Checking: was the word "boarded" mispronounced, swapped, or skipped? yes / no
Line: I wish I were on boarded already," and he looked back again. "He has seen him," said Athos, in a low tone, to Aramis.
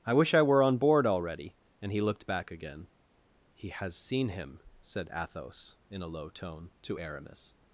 yes